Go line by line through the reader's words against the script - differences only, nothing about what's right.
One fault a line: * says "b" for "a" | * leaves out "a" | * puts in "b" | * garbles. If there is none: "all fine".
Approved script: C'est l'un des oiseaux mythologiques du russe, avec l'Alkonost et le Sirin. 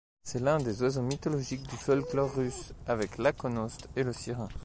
* puts in "folklore"